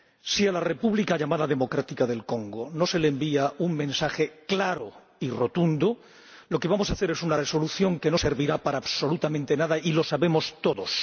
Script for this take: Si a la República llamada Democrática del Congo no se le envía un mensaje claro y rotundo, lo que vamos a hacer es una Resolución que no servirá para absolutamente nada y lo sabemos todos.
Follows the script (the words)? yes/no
yes